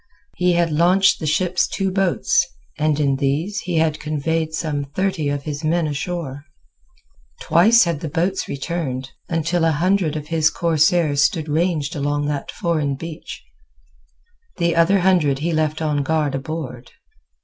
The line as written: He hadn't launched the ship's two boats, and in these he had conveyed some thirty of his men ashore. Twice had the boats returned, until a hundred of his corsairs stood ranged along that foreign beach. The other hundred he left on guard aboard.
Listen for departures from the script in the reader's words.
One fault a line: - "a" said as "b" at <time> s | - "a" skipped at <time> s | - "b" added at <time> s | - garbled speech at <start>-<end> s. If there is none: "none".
- "hadn't" said as "had" at 0.5 s